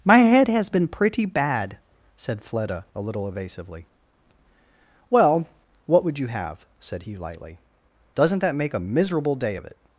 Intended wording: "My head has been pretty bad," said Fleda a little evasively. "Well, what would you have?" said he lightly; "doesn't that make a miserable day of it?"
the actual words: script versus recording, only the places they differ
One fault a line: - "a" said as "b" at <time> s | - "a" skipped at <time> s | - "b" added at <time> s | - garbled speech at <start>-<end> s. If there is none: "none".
none